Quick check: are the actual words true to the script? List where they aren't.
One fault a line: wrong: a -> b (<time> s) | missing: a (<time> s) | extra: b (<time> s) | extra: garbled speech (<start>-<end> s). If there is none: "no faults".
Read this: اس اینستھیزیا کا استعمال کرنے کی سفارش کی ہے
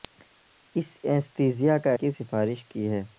missing: استعمال کرنے (1.9 s)